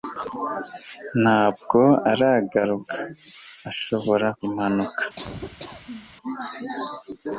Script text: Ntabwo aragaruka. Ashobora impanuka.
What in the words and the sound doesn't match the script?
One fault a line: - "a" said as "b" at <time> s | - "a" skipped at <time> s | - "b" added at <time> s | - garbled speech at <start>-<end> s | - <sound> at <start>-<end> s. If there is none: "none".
- laugh at 5.2-6.2 s